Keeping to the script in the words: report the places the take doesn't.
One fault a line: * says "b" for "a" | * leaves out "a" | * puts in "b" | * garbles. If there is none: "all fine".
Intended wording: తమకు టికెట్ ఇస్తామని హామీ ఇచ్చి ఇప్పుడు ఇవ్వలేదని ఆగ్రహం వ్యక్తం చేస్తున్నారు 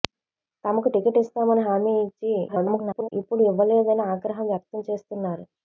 * garbles